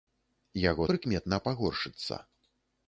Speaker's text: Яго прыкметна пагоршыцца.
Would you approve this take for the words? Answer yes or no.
yes